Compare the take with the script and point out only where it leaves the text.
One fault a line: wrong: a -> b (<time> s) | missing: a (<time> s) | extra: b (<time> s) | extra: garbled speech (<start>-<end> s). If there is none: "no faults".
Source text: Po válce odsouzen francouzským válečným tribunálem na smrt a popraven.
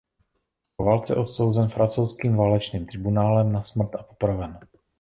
no faults